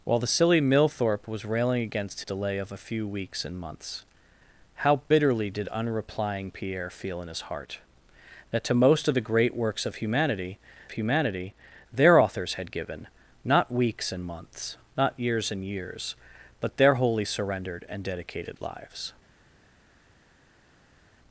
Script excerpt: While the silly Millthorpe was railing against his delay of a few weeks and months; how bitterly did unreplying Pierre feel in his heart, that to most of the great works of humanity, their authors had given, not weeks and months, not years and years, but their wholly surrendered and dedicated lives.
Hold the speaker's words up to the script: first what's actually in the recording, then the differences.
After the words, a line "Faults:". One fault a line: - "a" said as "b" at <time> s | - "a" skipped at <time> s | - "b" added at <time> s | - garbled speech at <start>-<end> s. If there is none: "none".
While the silly Millthorpe was railing against delay of a few weeks and months; how bitterly did unreplying Pierre feel in his heart, that to most of the great works of humanity humanity, their authors had given, not weeks and months, not years and years, but their wholly surrendered and dedicated lives.
Faults:
- "his" skipped at 2.2 s
- "humanity" added at 10.9 s